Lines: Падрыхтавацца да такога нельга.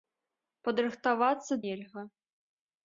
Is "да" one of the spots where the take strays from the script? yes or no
yes